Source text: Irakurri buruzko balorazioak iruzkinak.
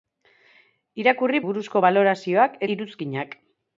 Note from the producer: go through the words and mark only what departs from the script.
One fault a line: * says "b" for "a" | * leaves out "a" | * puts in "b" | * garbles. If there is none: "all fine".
all fine